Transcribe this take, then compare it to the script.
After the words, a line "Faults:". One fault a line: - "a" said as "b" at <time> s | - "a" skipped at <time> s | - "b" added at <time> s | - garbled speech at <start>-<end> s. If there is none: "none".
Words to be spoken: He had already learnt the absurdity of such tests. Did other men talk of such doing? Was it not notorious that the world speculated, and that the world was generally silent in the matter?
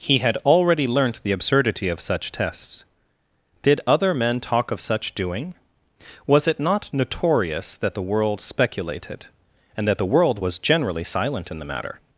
He had already learnt the absurdity of such tests. Did other men talk of such doing? Was it not notorious that the world speculated, and that the world was generally silent in the matter?
Faults:
none